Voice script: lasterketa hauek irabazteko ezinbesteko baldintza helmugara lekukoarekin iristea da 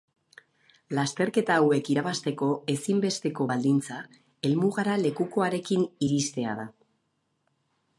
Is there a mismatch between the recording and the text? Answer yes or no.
no